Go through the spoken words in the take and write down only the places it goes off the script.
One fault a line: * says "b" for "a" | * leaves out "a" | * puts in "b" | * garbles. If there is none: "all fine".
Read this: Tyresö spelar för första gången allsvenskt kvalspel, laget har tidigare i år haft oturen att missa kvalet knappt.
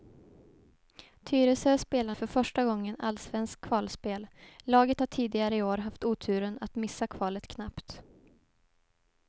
all fine